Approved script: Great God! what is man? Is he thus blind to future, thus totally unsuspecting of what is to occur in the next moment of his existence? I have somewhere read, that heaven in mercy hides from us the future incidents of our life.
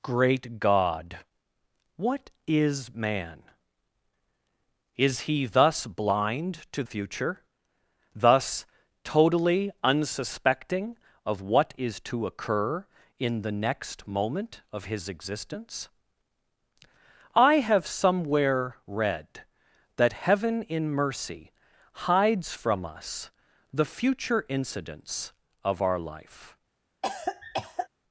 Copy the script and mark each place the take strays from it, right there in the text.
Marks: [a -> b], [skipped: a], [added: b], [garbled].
Great God! what is man? Is he thus blind to future, thus totally unsuspecting of what is to occur in the next moment of his existence? I have somewhere read, that heaven in mercy hides from us the future incidents of our life.